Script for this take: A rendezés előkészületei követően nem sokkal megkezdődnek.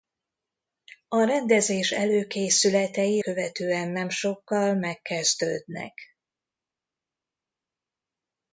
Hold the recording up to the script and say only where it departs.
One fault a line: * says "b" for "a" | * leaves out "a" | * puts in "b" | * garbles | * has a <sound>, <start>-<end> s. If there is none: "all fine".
all fine